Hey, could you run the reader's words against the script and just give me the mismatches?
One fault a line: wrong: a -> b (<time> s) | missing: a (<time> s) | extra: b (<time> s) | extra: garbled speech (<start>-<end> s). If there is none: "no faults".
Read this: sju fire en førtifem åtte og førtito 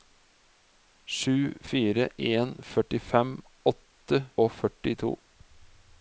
no faults